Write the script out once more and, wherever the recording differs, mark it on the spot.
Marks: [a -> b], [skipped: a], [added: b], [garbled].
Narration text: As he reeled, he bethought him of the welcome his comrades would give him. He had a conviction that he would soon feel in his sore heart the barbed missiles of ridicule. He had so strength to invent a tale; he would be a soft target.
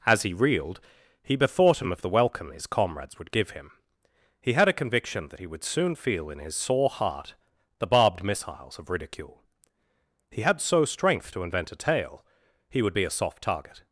As he reeled, he bethought him of the welcome his comrades would give him. He had a conviction that he would soon feel in his sore heart the barbed missiles of ridicule. He had so strength to invent a tale; he would be a soft target.